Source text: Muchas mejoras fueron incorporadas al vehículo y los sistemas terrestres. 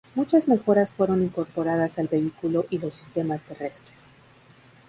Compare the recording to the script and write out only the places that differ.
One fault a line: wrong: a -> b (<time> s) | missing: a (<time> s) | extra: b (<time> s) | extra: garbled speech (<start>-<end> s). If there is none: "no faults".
no faults